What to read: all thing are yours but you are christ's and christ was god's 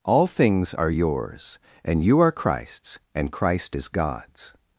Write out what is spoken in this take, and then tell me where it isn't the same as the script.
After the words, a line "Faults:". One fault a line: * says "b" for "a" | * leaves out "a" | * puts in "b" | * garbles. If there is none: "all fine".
all things are yours and you are christ's and christ is god's
Faults:
* says "things" for "thing"
* says "and" for "but"
* says "is" for "was"